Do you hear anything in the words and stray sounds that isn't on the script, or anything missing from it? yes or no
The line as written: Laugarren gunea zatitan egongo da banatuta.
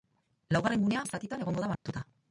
yes